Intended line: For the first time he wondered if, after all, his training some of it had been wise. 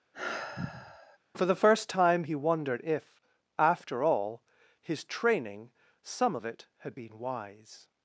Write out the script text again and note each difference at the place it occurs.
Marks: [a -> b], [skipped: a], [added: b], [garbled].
For the first time he wondered if, after all, his training some of it had been wise.